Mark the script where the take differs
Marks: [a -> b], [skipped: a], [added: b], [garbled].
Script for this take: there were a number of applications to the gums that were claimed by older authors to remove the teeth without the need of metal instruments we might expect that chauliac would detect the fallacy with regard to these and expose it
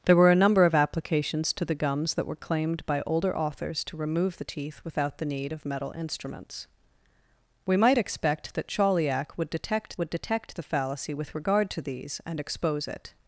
there were a number of applications to the gums that were claimed by older authors to remove the teeth without the need of metal instruments we might expect that chauliac would detect [added: would detect] the fallacy with regard to these and expose it